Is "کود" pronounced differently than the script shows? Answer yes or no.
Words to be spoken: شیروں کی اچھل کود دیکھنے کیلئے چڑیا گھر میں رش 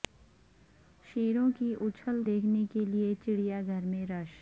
yes